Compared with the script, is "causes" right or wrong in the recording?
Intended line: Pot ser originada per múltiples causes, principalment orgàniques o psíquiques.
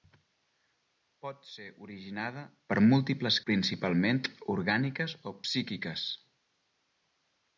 wrong